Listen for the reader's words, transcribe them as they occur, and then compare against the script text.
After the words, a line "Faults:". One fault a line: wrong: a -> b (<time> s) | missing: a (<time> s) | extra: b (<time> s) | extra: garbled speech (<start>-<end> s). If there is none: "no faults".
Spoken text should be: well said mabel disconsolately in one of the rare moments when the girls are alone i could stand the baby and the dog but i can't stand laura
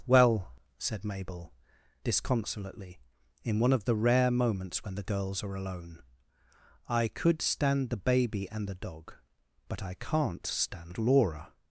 well said mabel disconsolately in one of the rare moments when the girls are alone i could stand the baby and the dog but i can't stand laura
Faults:
no faults